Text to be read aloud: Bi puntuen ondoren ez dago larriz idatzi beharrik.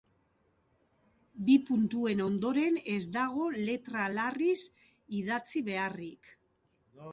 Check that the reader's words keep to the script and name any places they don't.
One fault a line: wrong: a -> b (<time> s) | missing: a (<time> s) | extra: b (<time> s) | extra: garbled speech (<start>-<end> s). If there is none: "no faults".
extra: letra (3.6 s)